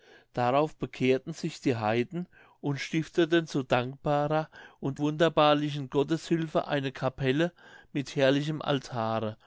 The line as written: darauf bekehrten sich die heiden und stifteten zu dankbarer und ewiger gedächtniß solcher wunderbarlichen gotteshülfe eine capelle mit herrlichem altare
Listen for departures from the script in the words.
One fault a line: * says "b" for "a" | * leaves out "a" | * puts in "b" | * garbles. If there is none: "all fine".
* leaves out "ewiger gedächtniß solcher"